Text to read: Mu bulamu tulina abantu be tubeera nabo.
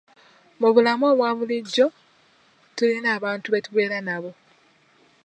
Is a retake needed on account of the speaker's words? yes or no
yes